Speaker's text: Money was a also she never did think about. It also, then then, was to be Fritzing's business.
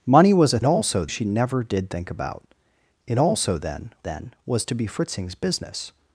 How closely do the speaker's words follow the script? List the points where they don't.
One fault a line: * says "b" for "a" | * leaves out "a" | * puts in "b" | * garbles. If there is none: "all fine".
all fine